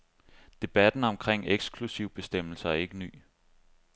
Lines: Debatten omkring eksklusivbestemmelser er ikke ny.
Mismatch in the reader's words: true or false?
false